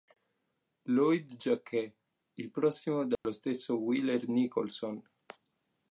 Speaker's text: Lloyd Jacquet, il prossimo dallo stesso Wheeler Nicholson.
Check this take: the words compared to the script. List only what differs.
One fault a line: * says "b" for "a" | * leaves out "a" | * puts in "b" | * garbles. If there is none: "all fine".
all fine